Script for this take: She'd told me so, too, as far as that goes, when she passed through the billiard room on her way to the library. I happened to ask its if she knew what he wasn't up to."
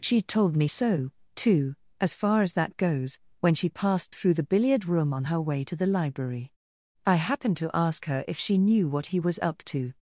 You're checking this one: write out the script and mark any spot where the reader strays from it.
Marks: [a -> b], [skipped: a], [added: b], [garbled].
She'd told me so, too, as far as that goes, when she passed through the billiard room on her way to the library. I happened to ask [its -> her] if she knew what he [wasn't -> was] up to."